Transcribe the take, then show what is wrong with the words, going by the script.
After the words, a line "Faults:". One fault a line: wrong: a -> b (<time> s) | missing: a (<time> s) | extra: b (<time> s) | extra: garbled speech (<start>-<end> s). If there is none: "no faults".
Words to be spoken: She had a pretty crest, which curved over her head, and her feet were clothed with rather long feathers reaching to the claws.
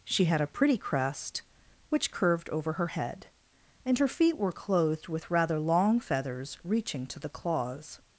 She had a pretty crest, which curved over her head, and her feet were clothed with rather long feathers reaching to the claws.
Faults:
no faults